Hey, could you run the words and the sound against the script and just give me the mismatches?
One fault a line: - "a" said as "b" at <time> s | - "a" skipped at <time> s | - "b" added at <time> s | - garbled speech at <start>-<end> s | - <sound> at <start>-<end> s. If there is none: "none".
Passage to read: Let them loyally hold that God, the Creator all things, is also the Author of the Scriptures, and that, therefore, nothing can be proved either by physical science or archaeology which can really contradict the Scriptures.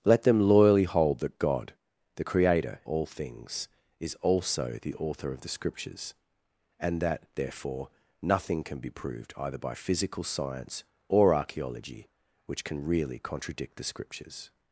none